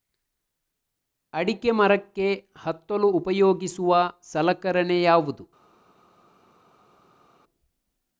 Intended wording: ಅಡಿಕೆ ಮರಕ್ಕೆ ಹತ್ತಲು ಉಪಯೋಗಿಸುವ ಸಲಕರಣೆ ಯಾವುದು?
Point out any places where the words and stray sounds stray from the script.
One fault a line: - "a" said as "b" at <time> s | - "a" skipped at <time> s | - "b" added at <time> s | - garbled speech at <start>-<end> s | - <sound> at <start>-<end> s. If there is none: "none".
none